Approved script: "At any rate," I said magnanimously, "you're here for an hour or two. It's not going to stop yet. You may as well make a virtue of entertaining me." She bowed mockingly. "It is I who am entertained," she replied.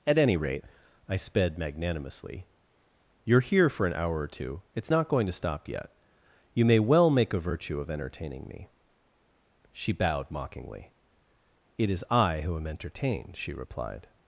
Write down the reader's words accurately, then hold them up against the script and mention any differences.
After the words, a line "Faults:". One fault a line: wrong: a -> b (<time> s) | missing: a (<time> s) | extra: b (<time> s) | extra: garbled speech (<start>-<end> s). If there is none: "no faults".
"At any rate," I sped magnanimously, "you're here for an hour or two. It's not going to stop yet. You may well make a virtue of entertaining me." She bowed mockingly. "It is I who am entertained," she replied.
Faults:
wrong: said -> sped (1.1 s)
missing: as (6.8 s)